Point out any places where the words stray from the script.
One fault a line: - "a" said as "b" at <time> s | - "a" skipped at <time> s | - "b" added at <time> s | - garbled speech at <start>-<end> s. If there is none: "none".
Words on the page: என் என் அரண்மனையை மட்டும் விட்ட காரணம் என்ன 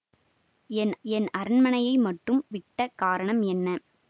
none